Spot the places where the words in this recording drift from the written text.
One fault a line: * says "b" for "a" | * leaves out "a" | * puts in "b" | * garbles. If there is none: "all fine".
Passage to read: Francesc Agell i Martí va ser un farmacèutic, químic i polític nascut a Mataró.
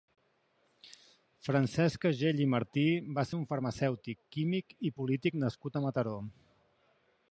all fine